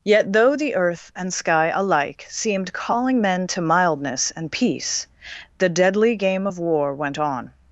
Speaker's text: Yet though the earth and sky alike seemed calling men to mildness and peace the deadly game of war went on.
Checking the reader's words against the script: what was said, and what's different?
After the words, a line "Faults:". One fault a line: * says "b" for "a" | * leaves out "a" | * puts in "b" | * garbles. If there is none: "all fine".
Yet though the earth and sky alike seemed calling men to mildness and peace the deadly game of war went on.
Faults:
all fine